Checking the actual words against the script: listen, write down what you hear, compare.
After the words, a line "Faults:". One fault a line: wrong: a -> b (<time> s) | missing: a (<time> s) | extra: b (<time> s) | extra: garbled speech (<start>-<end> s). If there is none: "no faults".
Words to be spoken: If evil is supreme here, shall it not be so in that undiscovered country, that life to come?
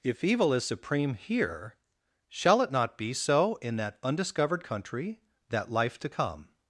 If evil is supreme here, shall it not be so in that undiscovered country, that life to come?
Faults:
no faults